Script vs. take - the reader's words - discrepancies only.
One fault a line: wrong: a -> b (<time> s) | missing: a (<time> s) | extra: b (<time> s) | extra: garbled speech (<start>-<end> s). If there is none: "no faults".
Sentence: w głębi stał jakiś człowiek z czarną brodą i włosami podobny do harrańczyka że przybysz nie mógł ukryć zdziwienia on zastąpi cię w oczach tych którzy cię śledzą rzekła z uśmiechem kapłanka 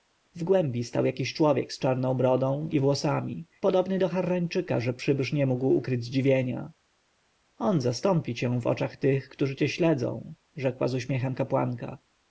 no faults